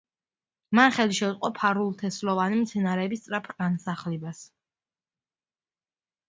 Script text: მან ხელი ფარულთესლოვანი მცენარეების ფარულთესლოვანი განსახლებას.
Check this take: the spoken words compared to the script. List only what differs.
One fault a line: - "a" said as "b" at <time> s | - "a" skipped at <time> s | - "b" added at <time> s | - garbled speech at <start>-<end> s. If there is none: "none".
- "შეუწყო" added at 1.2 s
- "ფარულთესლოვანი" said as "სწრაფ" at 3.2 s